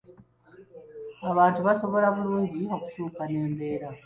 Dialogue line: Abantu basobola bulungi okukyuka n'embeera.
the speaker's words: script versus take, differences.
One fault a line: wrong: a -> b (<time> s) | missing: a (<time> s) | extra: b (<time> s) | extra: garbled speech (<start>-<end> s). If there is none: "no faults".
no faults